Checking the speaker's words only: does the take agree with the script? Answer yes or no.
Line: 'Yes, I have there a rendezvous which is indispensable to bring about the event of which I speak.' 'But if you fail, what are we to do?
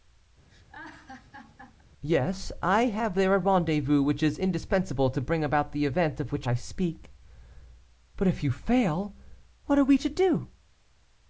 yes